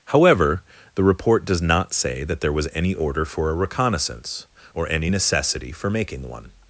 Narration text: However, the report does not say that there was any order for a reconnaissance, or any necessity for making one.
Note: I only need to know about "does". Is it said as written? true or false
true